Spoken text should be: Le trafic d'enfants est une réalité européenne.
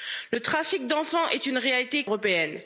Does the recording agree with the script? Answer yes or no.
yes